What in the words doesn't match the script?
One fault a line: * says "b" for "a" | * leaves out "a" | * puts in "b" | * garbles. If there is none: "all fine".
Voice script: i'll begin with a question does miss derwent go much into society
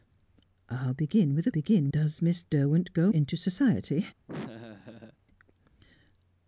* says "begin" for "question"
* leaves out "much"